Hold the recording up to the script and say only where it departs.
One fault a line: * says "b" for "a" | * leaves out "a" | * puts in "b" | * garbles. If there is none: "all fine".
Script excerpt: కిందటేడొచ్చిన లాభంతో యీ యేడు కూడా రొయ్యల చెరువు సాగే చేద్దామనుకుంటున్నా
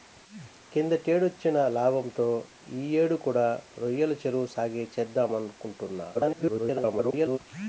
* garbles